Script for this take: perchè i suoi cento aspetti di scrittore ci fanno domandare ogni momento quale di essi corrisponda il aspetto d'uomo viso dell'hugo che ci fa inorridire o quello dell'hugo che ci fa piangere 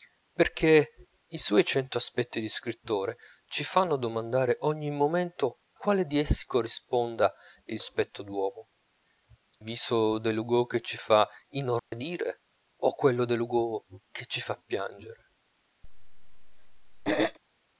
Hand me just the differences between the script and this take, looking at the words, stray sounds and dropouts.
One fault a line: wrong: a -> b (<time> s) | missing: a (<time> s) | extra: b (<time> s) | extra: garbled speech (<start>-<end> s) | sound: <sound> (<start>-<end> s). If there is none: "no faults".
sound: dropout (11.8-11.9 s)
sound: throat clearing (15.8-17.4 s)